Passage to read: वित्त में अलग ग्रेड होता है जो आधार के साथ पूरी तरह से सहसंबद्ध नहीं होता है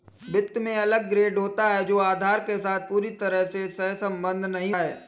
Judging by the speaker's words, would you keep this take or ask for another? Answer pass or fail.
fail